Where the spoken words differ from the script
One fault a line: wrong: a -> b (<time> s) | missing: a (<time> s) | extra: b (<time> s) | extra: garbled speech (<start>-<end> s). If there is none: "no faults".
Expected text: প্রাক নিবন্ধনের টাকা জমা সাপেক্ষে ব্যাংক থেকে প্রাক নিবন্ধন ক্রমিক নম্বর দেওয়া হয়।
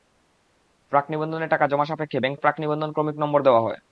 missing: থেকে (2.3 s)